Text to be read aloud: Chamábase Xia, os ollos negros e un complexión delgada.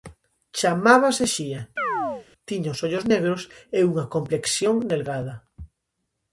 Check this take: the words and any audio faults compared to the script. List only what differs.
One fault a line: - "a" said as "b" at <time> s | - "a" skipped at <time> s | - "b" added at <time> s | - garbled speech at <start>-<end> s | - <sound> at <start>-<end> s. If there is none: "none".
- chirp at 1.8-2.3 s
- "tiña" added at 2.5 s
- "un" said as "unha" at 3.9 s